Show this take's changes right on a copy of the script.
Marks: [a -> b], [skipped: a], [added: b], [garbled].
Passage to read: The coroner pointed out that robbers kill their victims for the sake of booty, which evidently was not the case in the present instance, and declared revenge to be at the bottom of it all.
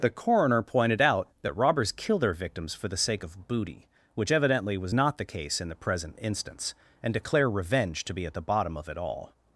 The coroner pointed out that robbers kill their victims for the sake of booty, which evidently was not the case in the present instance, and [declared -> declare] revenge to be at the bottom of it all.